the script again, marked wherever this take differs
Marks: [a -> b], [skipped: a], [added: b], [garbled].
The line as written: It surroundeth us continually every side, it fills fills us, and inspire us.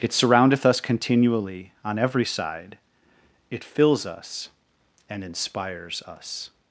It surroundeth us continually [added: on] every side, it fills [skipped: fills] us, and [inspire -> inspires] us.